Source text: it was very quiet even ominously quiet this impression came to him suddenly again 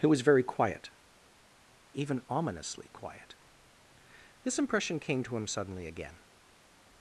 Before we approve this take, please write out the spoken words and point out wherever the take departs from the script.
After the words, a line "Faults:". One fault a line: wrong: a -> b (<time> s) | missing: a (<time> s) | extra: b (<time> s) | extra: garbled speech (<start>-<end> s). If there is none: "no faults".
it was very quiet even ominously quiet this impression came to him suddenly again
Faults:
no faults